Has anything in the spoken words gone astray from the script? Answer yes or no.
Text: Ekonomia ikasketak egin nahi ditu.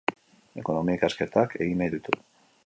no